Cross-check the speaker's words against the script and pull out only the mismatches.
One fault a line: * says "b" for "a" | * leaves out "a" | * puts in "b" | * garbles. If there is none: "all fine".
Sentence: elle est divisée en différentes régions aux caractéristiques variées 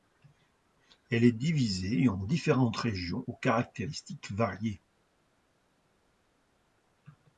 all fine